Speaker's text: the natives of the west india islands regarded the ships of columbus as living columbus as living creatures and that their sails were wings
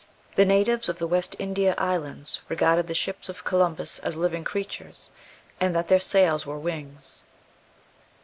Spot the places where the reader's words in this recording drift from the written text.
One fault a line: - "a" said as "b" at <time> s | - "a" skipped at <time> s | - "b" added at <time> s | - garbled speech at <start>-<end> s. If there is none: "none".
- "columbus as living" skipped at 4.4 s